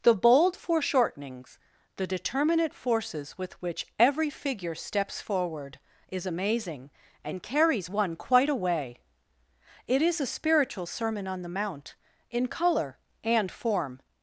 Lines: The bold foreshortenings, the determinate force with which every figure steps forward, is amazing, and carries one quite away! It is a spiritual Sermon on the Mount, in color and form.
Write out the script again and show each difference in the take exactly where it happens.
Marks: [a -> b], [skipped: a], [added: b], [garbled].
The bold foreshortenings, the determinate [force -> forces] with which every figure steps forward, is amazing, and carries one quite away! It is a spiritual Sermon on the Mount, in color and form.